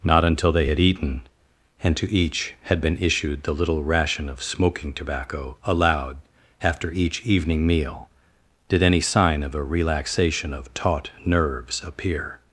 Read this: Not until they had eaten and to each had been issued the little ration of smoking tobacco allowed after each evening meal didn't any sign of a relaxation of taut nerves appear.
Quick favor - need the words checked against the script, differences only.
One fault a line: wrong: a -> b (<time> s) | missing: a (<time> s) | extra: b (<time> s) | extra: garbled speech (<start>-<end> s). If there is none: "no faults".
wrong: didn't -> did (8.7 s)